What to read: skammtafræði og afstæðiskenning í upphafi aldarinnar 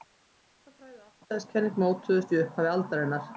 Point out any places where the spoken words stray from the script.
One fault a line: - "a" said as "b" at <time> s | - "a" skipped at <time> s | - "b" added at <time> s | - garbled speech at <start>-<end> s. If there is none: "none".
- "mótuðust" added at 1.9 s